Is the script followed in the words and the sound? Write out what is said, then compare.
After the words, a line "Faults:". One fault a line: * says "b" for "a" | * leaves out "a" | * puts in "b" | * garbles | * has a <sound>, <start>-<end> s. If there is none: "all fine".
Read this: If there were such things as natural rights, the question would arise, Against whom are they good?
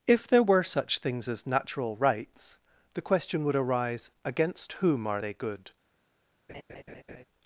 If there were such things as natural rights, the question would arise, Against whom are they good?
Faults:
* has a laugh, 6.5-7.2 s